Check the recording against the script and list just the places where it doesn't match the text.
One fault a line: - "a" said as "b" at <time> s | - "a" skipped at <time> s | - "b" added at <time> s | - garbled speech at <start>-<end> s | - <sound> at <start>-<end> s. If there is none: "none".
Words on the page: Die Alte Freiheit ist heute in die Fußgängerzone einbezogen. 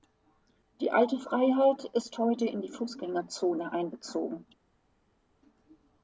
none